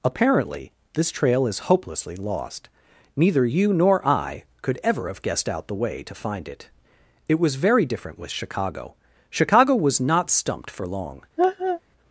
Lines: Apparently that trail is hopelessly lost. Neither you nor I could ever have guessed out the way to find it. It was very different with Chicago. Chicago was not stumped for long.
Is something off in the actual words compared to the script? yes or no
yes